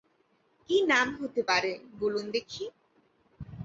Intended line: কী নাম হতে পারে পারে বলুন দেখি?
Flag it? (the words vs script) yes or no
yes